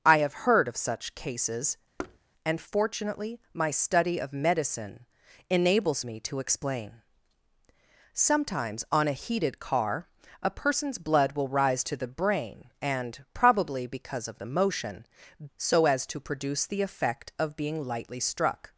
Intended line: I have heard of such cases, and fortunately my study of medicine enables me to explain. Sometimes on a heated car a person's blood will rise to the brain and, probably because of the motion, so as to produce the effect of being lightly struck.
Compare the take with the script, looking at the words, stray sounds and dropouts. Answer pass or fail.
fail